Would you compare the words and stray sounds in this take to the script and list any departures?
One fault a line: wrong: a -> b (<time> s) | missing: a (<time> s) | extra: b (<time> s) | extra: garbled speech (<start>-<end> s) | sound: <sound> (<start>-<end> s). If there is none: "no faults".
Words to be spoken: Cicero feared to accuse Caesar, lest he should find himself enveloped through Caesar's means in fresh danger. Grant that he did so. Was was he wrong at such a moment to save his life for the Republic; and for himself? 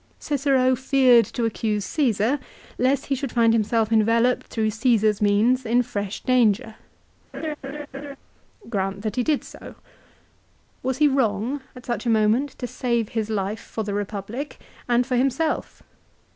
sound: laugh (7.3-8.2 s)
missing: was (11.0 s)